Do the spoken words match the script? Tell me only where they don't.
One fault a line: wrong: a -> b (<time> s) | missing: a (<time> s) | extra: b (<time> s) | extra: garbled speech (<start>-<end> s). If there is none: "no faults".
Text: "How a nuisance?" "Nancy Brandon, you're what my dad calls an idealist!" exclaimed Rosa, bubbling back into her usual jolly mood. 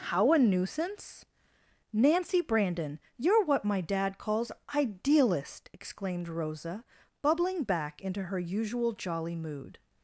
missing: an (4.5 s)